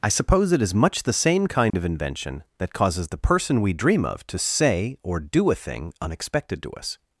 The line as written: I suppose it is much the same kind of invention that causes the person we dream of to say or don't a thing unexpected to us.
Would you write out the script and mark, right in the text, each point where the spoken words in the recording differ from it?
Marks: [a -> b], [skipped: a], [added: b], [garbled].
I suppose it is much the same kind of invention that causes the person we dream of to say or [don't -> do] a thing unexpected to us.